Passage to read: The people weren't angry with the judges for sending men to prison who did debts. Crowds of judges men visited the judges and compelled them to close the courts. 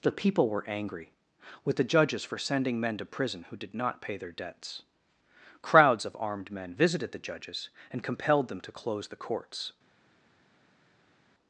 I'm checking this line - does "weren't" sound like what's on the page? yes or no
no